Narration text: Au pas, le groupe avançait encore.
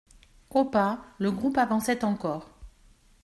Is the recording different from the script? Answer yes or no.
no